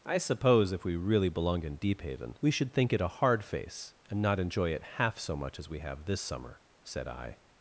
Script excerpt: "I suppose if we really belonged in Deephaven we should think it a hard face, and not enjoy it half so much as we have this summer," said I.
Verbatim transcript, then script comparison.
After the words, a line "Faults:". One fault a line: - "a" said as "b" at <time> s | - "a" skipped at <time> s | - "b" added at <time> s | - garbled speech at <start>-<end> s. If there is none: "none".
"I suppose if we really belonged in Deephaven we should think it a hard face, and not enjoy it half so much as we have this summer," said I.
Faults:
none